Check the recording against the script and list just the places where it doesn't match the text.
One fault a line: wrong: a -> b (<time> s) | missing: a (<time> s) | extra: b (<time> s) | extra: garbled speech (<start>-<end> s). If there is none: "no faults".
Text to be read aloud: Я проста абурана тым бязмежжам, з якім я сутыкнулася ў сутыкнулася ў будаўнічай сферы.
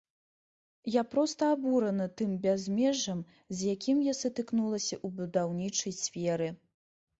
missing: сутыкнулася ў (5.2 s)